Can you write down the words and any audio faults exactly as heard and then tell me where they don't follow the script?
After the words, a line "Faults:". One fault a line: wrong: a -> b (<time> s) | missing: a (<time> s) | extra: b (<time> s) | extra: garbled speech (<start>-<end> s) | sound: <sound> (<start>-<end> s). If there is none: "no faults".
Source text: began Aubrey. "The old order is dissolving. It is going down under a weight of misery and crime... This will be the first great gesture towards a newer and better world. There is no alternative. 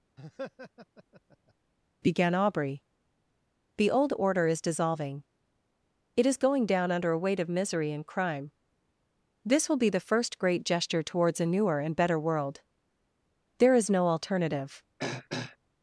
began Aubrey. "The old order is dissolving. It is going down under a weight of misery and crime... This will be the first great gesture towards a newer and better world. There is no alternative.
Faults:
sound: laugh (0.2-1.5 s)
sound: throat clearing (15.0-15.6 s)